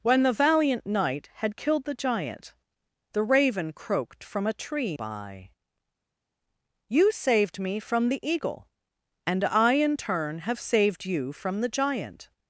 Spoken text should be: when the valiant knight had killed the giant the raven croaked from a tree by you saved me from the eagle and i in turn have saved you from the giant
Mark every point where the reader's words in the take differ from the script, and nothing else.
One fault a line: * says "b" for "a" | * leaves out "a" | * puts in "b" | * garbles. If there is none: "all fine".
all fine